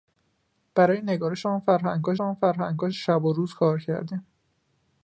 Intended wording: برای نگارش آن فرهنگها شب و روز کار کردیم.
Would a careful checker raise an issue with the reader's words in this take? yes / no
yes